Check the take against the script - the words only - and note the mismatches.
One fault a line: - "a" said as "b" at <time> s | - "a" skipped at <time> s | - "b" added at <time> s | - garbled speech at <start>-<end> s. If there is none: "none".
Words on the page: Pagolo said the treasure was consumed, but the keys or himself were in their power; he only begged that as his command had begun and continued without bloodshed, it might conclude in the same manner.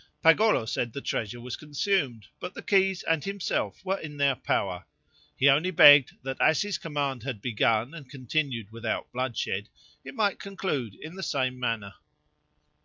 - "or" said as "and" at 3.0 s